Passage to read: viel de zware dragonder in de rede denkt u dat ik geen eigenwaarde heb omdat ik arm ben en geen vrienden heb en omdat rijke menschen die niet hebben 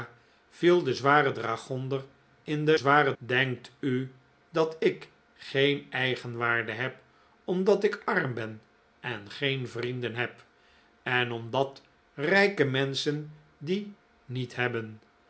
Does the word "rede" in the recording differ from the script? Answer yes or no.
yes